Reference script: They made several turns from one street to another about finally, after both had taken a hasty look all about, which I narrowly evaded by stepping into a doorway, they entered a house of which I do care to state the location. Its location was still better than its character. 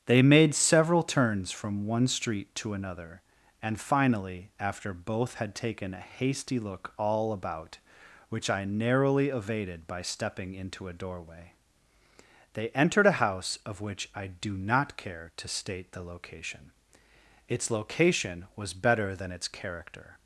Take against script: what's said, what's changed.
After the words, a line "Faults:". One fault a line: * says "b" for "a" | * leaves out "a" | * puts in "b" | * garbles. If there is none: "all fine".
They made several turns from one street to another and finally, after both had taken a hasty look all about, which I narrowly evaded by stepping into a doorway, they entered a house of which I do not care to state the location. Its location was better than its character.
Faults:
* says "and" for "about"
* puts in "not"
* leaves out "still"